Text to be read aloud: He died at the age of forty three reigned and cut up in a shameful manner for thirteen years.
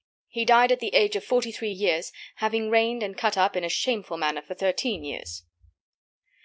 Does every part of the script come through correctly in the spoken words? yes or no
no